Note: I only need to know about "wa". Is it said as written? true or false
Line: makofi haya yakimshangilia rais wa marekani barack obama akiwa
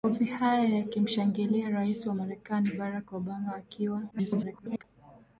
true